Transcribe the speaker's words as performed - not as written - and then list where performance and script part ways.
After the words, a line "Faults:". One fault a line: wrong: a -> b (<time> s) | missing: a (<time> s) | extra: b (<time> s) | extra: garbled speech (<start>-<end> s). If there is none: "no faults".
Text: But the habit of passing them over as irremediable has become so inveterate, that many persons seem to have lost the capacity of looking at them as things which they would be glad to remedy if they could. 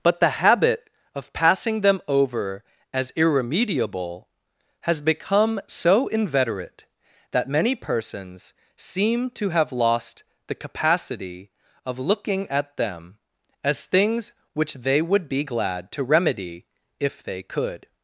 But the habit of passing them over as irremediable has become so inveterate, that many persons seem to have lost the capacity of looking at them as things which they would be glad to remedy if they could.
Faults:
no faults